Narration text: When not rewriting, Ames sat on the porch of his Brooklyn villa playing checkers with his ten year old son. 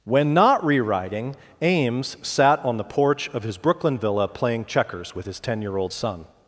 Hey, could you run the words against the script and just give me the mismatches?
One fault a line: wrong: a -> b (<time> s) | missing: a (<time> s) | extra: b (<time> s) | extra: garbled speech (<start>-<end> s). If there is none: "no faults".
no faults